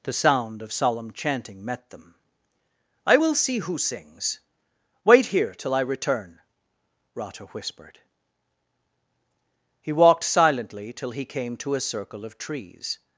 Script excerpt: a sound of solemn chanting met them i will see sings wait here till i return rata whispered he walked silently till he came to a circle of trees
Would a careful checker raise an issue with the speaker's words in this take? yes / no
yes